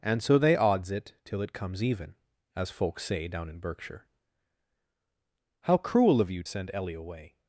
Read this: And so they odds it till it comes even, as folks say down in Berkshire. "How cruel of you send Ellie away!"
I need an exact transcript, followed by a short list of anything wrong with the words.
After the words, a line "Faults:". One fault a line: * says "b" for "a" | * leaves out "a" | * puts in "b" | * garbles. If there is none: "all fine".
And so they odds it till it comes even, as folks say down in Berkshire. "How cruel of you send Ellie away!"
Faults:
all fine